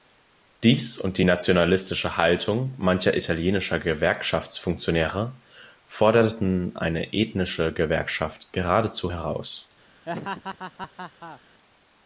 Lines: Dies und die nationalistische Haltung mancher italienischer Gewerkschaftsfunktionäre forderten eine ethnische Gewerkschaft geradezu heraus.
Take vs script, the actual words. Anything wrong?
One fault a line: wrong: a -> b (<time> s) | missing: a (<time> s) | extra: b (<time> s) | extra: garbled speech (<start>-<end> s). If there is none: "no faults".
no faults